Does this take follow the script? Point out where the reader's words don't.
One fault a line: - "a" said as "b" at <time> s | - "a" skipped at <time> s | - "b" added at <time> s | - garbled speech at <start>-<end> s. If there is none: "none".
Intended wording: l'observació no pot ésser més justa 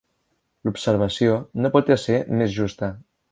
none